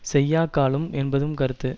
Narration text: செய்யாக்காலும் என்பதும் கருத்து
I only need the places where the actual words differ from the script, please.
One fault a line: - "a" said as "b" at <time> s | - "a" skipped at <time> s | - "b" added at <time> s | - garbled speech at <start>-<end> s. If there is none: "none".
none